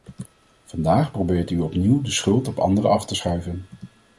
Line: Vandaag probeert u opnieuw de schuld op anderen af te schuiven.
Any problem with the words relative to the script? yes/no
no